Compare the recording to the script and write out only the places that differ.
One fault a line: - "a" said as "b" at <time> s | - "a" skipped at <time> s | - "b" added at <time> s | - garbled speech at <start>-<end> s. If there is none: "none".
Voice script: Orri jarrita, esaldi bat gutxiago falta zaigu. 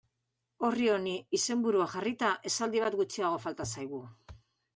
- "honi izenburua" added at 0.9 s